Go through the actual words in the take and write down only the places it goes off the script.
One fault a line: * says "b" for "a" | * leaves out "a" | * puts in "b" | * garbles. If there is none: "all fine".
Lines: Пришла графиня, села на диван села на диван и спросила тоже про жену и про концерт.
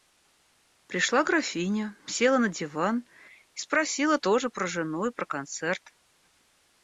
* leaves out "села на диван"